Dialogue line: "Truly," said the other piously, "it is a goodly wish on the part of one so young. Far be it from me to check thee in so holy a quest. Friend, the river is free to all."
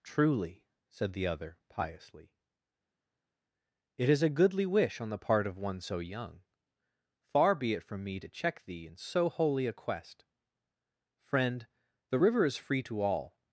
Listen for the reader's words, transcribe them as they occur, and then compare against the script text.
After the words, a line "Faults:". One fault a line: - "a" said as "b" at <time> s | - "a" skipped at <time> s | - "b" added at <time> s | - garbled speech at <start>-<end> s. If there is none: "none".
"Truly," said the other piously, "it is a goodly wish on the part of one so young. Far be it from me to check thee in so holy a quest. Friend, the river is free to all."
Faults:
none